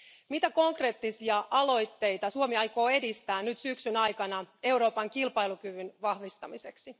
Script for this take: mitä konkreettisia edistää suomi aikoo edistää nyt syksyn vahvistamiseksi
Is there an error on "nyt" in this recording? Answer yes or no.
no